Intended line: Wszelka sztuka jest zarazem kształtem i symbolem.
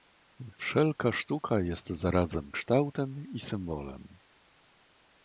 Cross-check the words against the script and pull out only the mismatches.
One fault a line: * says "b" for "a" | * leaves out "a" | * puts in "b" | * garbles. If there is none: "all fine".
all fine